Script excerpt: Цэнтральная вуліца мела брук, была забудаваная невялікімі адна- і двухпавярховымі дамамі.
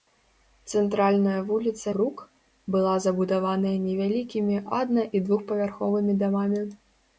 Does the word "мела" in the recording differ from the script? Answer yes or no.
yes